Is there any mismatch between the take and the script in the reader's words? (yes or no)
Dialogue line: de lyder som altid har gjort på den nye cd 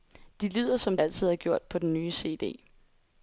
no